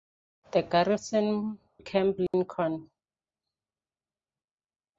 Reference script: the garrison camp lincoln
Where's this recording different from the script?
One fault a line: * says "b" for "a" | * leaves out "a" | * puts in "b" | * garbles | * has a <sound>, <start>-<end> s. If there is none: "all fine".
* has a dropout, 2.3-2.3 s